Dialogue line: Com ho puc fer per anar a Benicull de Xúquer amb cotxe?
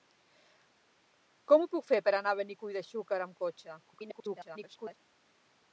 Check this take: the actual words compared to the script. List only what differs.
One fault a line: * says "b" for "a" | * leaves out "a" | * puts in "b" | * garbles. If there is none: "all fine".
* garbles